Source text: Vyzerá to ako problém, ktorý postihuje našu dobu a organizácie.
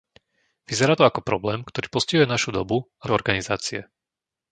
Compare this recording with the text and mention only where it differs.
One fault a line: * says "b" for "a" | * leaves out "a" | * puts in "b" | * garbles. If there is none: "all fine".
all fine